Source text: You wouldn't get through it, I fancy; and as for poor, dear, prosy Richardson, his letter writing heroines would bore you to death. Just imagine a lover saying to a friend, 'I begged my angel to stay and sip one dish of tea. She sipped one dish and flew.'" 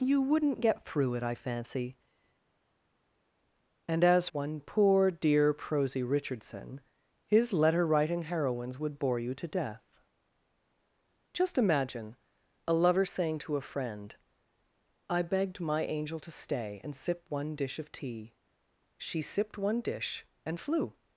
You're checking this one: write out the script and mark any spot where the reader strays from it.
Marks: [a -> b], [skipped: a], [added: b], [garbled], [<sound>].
You wouldn't get through it, I fancy; and as [for -> one] poor, dear, prosy Richardson, his letter writing heroines would bore you to death. Just imagine a lover saying to a friend, 'I begged my angel to stay and sip one dish of tea. She sipped one dish and flew.'"